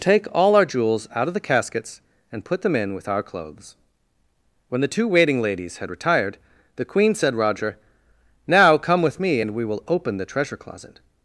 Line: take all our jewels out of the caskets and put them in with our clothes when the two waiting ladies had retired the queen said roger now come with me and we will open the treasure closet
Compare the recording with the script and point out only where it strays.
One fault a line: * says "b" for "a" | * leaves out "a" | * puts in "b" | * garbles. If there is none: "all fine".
all fine